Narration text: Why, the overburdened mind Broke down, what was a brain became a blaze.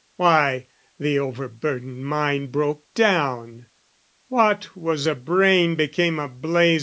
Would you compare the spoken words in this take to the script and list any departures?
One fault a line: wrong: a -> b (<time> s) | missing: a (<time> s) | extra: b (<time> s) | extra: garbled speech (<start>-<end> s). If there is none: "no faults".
no faults